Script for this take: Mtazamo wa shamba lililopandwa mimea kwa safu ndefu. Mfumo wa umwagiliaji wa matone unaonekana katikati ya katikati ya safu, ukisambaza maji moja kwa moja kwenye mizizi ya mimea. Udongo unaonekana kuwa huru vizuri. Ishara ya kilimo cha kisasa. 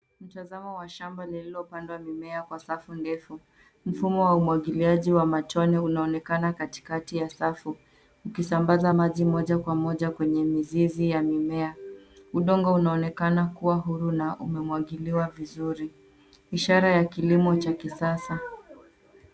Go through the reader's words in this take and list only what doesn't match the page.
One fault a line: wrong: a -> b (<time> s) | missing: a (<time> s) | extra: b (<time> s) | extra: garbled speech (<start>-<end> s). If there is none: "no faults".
missing: katikati ya (7.3 s)
extra: na umemwagiliwa (14.1 s)